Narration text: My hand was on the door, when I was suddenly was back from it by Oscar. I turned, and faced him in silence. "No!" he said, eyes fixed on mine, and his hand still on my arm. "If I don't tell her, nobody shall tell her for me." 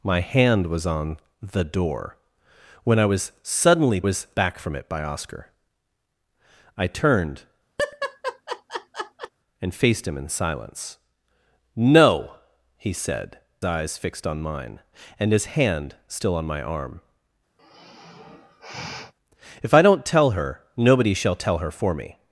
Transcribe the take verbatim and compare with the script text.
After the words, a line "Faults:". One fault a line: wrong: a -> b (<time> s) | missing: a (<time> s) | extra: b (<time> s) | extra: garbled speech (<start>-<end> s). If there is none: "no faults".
My hand was on the door, when I was suddenly was back from it by Oscar. I turned, and faced him in silence. "No!" he said, eyes fixed on mine, and his hand still on my arm. "If I don't tell her, nobody shall tell her for me."
Faults:
no faults